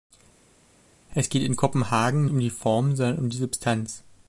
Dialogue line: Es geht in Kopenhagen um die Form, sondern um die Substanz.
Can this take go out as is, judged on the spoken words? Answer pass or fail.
pass